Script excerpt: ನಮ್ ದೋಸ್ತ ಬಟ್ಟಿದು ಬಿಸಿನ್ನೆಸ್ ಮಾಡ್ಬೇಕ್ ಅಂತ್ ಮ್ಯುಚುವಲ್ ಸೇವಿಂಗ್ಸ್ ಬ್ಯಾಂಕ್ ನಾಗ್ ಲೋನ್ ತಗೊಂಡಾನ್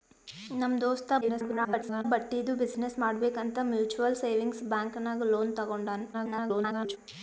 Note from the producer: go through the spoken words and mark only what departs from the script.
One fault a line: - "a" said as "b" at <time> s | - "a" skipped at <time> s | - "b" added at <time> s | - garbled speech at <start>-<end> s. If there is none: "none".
- garbled speech at 1.2-2.0 s
- garbled speech at 6.1-7.0 s